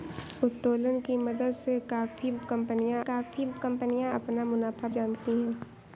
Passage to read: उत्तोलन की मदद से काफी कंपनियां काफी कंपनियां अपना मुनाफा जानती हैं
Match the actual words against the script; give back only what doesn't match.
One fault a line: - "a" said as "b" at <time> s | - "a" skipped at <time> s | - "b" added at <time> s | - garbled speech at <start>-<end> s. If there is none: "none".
none